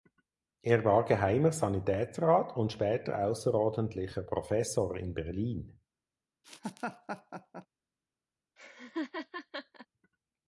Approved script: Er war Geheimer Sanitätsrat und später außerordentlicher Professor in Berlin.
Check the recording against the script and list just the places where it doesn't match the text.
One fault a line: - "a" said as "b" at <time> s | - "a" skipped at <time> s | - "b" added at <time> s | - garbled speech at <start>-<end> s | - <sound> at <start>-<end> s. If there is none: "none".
- laugh at 6.4-7.7 s
- laugh at 8.6-9.9 s